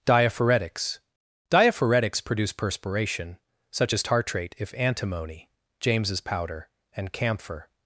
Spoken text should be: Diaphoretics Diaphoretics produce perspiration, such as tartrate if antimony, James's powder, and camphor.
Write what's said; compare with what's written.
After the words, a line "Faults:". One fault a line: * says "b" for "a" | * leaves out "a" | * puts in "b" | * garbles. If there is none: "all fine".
Diaphoretics Diaphoretics produce perspiration, such as tartrate if antimony, James's powder, and camphor.
Faults:
all fine